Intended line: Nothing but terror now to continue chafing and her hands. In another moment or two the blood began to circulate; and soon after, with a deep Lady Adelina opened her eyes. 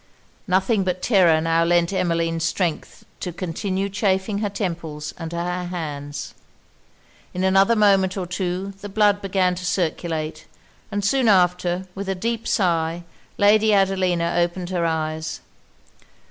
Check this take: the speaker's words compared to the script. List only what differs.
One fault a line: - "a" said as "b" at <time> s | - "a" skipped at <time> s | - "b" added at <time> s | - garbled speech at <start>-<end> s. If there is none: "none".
- "lent Emmeline strength" added at 1.6 s
- "her temples" added at 4.4 s
- "sigh" added at 12.5 s